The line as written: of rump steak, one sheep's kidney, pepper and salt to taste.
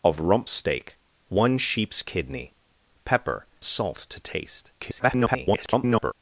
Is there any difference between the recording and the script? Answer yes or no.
yes